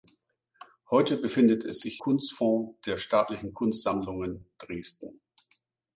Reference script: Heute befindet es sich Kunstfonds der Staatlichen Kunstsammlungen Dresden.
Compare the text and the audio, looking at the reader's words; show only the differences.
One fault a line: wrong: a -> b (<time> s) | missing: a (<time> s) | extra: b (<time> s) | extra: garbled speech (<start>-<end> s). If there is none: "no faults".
no faults